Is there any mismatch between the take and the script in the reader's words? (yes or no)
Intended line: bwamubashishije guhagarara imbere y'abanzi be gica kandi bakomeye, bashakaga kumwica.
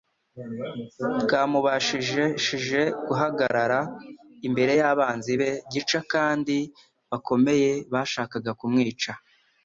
no